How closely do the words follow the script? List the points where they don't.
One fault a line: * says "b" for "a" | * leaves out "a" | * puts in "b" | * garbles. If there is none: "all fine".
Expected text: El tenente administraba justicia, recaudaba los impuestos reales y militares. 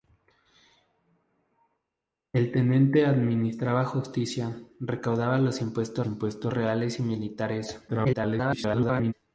* puts in "impuestos"
* garbles